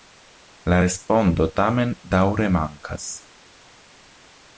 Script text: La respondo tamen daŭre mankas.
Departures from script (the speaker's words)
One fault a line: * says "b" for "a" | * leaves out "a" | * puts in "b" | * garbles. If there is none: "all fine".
all fine